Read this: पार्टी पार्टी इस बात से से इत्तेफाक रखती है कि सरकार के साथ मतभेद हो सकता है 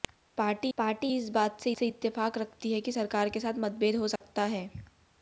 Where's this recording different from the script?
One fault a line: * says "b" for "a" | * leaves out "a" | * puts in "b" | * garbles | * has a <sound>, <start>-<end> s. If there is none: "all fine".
* has a dropout, 4.2-4.2 s